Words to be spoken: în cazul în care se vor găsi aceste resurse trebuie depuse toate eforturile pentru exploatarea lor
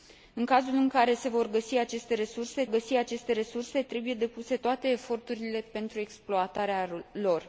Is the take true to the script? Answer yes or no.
no